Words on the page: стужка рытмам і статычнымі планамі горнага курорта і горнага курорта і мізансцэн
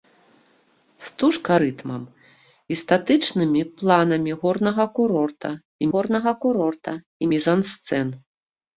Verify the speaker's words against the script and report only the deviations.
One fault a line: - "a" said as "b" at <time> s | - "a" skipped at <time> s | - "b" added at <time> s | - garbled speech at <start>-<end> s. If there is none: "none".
none